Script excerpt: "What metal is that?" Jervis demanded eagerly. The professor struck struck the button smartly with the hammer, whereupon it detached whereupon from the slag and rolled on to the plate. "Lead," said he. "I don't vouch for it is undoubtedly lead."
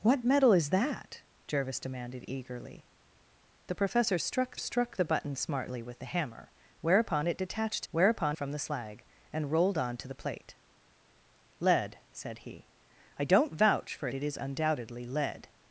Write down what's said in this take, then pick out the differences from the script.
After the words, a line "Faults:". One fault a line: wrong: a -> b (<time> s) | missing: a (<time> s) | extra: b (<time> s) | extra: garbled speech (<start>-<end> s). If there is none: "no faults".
"What metal is that?" Jervis demanded eagerly. The professor struck struck the button smartly with the hammer, whereupon it detached whereupon from the slag and rolled on to the plate. "Lead," said he. "I don't vouch for it is undoubtedly lead."
Faults:
no faults